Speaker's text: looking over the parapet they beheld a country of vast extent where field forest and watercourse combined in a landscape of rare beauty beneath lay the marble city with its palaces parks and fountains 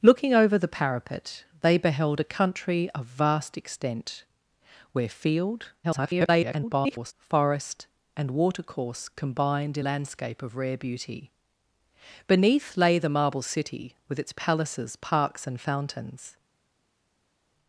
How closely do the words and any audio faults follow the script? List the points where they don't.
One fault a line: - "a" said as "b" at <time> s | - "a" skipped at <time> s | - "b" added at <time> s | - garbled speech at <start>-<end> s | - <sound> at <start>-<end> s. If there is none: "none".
- garbled speech at 5.8-7.1 s
- "a" skipped at 9.8 s